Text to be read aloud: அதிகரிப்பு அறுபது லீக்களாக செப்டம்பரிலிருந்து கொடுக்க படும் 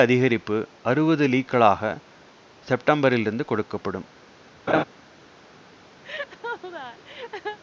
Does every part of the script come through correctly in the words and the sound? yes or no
no